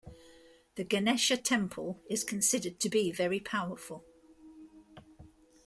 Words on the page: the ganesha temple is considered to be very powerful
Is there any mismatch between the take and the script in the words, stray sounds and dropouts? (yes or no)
no